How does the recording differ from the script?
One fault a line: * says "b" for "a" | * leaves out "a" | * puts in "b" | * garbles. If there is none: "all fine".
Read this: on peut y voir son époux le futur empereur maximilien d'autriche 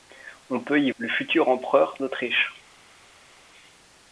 * leaves out "voir son époux"
* leaves out "maximilien"